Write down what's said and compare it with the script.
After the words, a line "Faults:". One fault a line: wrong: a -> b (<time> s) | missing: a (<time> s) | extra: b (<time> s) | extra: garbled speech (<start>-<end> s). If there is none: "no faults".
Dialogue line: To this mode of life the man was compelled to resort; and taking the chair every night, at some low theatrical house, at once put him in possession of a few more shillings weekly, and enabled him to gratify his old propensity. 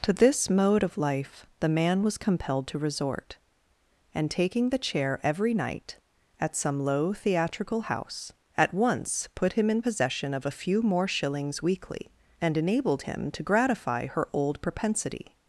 To this mode of life the man was compelled to resort; and taking the chair every night, at some low theatrical house, at once put him in possession of a few more shillings weekly, and enabled him to gratify her old propensity.
Faults:
wrong: his -> her (14.1 s)